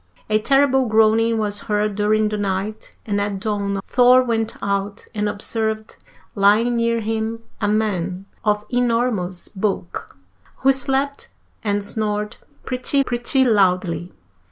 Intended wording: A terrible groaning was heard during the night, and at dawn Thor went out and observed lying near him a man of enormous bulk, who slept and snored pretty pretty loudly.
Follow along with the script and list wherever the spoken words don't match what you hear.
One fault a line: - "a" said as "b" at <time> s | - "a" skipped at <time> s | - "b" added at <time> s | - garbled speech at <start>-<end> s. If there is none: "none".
none